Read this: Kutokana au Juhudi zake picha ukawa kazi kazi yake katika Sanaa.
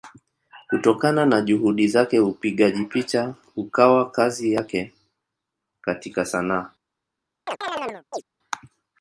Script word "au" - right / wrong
wrong